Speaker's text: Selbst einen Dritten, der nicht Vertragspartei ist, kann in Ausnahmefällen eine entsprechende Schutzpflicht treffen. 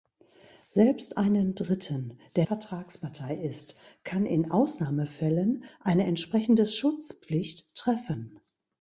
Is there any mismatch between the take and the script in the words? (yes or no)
yes